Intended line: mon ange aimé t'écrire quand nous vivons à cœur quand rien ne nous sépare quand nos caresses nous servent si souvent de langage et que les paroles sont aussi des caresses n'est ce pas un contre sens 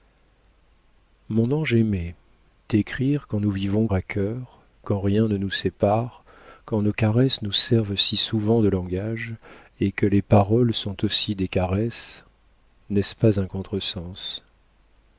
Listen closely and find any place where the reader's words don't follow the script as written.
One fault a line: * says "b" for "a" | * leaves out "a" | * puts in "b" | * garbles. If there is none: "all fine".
all fine